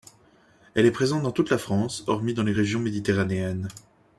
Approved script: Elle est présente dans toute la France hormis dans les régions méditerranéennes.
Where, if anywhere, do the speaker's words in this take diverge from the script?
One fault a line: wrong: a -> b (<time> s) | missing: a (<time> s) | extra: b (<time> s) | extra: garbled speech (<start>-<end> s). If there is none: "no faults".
no faults